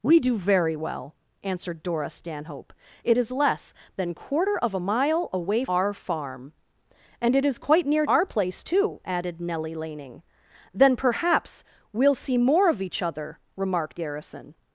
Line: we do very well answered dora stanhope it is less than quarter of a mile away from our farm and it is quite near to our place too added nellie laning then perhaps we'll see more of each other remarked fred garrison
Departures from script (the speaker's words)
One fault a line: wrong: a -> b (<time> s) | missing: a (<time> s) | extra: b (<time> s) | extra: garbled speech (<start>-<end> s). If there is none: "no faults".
missing: from (5.7 s)
missing: to (8.1 s)
missing: fred (14.0 s)